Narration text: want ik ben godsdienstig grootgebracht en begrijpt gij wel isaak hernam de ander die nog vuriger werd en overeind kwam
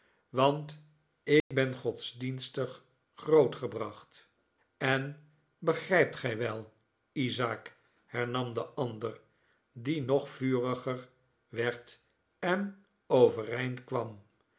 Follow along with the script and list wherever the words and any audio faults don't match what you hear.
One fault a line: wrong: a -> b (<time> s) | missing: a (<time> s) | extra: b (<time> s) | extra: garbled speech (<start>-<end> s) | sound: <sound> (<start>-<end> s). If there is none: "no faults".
sound: dropout (1.4-1.5 s)